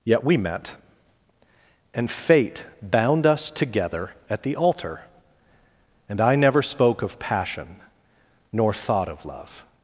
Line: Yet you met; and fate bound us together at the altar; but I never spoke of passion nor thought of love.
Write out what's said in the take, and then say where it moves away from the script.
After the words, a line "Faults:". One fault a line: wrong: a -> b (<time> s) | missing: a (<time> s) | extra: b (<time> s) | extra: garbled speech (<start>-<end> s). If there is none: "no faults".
Yet we met; and fate bound us together at the altar; and I never spoke of passion nor thought of love.
Faults:
wrong: you -> we (0.2 s)
wrong: but -> and (6.1 s)